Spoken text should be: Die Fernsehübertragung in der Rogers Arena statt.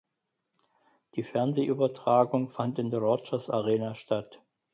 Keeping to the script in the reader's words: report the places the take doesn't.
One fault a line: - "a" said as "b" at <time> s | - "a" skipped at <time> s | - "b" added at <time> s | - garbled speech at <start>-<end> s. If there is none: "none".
- "fand" added at 2.5 s